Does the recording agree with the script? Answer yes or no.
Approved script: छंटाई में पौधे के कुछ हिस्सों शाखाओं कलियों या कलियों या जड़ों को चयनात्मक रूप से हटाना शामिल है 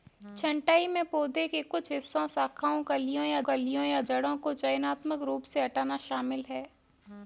yes